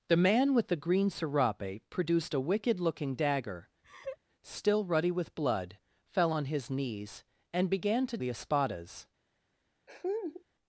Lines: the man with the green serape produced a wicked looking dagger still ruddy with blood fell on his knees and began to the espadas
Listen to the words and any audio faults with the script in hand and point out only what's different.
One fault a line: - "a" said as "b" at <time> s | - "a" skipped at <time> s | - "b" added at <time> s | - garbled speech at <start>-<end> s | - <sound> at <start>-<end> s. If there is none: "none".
- laugh at 3.8-4.2 s
- laugh at 9.9-10.4 s